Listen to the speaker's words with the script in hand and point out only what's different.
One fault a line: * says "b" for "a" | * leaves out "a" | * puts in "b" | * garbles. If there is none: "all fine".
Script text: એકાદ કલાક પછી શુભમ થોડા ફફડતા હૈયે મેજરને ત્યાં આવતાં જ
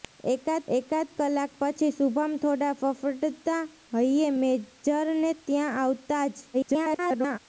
* puts in "એકાદ"
* garbles